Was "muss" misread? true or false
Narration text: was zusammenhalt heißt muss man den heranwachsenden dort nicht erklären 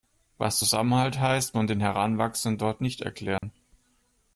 true